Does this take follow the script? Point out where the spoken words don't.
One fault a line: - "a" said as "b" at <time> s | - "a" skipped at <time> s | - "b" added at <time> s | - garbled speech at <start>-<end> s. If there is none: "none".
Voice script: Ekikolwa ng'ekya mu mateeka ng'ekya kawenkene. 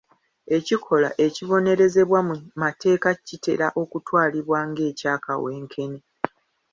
- "ng'ekya" said as "ekibonerezebwa" at 1.2 s
- "kitera okutwalibwa" added at 3.3 s